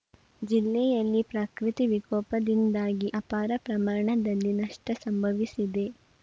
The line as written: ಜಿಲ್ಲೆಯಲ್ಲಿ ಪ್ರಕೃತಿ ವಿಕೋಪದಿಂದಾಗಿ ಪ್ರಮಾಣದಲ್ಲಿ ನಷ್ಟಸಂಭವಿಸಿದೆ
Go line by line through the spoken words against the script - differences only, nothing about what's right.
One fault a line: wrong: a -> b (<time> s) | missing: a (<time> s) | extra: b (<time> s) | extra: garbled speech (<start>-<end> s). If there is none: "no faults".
extra: ಅಪಾರ (3.1 s)